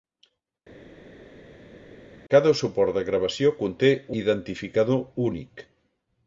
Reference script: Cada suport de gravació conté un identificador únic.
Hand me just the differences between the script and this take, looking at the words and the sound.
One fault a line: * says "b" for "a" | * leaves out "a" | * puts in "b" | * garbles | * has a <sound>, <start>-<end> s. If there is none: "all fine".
* leaves out "un"